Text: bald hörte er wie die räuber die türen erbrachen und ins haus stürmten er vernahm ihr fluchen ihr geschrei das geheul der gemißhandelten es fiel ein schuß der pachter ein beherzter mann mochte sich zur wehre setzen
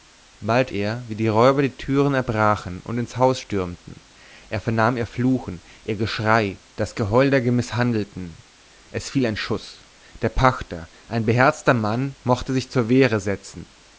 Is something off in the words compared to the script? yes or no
yes